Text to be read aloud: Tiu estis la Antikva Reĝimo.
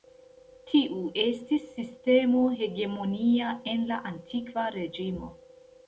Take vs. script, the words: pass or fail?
fail